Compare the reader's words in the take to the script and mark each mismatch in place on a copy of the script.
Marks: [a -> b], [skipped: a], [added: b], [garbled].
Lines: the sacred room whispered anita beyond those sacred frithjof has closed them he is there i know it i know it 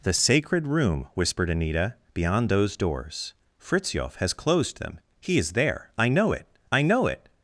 the sacred room whispered anita beyond those [sacred -> doors] frithjof has closed them he is there i know it i know it